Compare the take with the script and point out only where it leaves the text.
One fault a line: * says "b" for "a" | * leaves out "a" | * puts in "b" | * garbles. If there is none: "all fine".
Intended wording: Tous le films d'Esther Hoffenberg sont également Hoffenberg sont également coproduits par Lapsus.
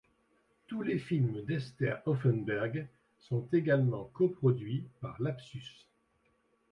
* says "les" for "le"
* leaves out "Hoffenberg sont également"